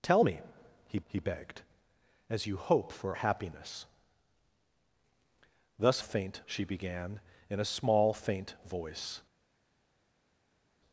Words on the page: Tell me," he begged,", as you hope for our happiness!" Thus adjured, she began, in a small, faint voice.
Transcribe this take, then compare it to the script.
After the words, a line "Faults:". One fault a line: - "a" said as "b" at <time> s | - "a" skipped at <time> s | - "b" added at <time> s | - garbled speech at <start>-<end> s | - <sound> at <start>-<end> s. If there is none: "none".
Tell me," he he begged,", as you hope for happiness!" Thus faint, she began, in a small, faint voice.
Faults:
- "he" added at 1.1 s
- "our" skipped at 3.2 s
- "adjured" said as "faint" at 6.0 s